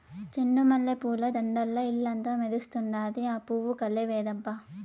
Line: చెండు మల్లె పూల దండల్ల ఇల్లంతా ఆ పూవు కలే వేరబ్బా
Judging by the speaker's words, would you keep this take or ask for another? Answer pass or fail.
fail